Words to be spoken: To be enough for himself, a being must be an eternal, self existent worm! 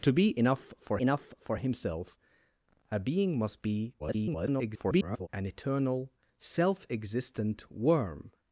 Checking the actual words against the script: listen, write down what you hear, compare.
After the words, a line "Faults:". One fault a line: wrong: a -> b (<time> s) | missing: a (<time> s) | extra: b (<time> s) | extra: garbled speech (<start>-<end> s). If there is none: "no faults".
To be enough for enough for himself, a being must be [garbled] an eternal, self existent worm!
Faults:
extra: enough for (1.0 s)
extra: garbled speech (4.0-5.3 s)